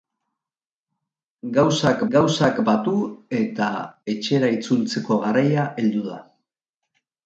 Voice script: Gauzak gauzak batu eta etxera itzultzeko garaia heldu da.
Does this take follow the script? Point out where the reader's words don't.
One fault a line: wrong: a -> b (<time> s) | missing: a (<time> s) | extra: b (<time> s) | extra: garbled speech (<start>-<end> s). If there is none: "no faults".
no faults